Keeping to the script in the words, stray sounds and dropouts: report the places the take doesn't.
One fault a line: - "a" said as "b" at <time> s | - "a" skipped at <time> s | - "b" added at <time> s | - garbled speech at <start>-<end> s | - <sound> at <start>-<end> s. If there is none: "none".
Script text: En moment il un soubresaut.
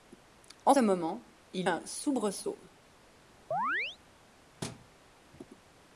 - chirp at 3.5-4.0 s
- thud at 4.6-4.9 s